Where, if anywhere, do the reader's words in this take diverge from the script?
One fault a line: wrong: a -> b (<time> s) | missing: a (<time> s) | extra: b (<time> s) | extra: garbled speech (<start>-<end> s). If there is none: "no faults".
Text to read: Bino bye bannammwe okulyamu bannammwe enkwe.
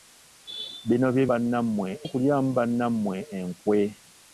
no faults